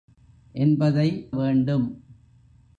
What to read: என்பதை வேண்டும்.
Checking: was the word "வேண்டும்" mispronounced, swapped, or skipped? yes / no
no